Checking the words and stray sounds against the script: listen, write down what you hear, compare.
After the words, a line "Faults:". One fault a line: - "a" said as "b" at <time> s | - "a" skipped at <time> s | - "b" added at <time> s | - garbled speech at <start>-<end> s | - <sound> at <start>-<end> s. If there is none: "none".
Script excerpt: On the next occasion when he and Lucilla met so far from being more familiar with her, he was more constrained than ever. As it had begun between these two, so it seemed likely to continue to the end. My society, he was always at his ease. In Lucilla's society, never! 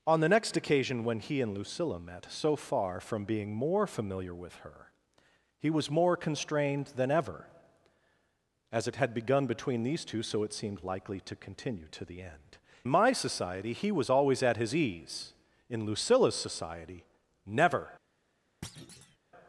On the next occasion when he and Lucilla met so far from being more familiar with her, he was more constrained than ever. As it had begun between these two, so it seemed likely to continue to the end. My society, he was always at his ease. In Lucilla's society, never!
Faults:
- thud at 18.6-19.2 s